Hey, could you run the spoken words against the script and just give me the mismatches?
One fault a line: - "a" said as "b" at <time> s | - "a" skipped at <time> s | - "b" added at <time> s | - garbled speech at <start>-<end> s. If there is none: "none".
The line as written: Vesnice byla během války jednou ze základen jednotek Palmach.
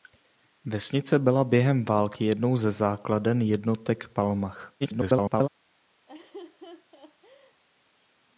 - garbled speech at 4.8-5.5 s